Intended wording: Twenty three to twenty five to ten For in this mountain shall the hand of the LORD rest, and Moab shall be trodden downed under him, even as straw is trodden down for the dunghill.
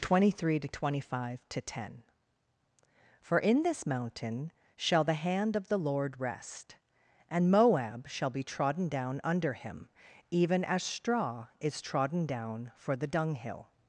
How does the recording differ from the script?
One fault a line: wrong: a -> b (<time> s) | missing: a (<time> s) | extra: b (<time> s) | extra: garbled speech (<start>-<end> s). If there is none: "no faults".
wrong: downed -> down (8.9 s)